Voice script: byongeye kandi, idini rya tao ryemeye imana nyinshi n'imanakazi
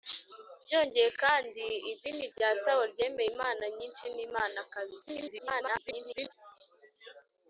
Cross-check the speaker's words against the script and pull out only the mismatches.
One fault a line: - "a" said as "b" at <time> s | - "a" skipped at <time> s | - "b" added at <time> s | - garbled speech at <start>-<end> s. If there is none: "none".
- garbled speech at 5.1-6.3 s